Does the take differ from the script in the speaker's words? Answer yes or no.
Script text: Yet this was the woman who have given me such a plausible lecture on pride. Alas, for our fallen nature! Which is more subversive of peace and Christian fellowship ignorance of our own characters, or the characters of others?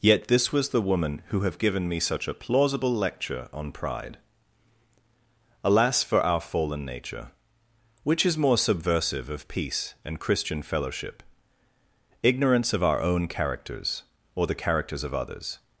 no